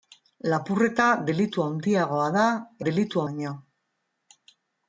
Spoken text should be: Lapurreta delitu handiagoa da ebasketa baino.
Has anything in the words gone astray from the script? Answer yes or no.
yes